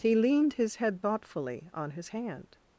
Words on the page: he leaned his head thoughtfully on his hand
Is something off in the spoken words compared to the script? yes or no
no